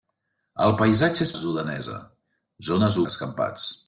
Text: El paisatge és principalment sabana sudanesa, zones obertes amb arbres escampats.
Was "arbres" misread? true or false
true